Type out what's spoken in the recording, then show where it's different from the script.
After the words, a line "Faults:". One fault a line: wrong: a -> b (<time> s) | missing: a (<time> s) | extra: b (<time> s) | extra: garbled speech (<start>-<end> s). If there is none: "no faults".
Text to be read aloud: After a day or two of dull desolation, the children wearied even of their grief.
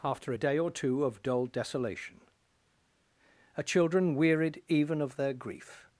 After a day or two of dull desolation, a children wearied even of their grief.
Faults:
wrong: the -> a (3.5 s)